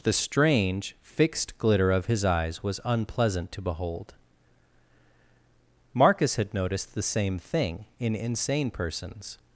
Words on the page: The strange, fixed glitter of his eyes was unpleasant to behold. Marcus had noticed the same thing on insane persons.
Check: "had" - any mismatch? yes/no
no